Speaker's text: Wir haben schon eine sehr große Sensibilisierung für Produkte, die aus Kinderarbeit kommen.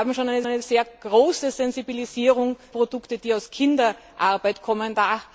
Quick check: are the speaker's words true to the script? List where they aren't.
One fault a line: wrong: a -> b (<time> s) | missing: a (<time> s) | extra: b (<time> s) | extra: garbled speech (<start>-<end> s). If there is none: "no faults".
extra: eine (0.5 s)
missing: für (2.6 s)